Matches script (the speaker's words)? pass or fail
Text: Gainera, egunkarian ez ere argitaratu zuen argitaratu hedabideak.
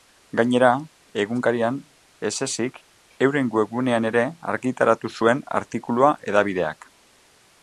fail